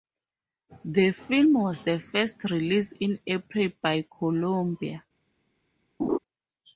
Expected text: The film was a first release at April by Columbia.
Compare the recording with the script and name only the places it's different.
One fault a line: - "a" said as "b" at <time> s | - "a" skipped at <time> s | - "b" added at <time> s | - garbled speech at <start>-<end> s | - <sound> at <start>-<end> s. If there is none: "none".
- "a" said as "the" at 1.8 s
- "at" said as "in" at 2.9 s
- laugh at 6.0-6.2 s